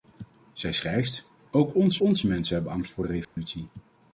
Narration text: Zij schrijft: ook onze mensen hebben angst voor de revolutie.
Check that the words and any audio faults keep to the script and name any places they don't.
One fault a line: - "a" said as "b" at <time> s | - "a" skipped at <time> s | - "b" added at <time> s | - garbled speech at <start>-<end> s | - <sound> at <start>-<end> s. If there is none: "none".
- "onze" added at 2.0 s
- dropout at 3.2-3.4 s